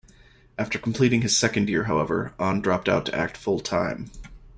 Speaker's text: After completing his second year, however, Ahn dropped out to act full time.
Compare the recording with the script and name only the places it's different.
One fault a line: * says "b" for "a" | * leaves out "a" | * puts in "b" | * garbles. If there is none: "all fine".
all fine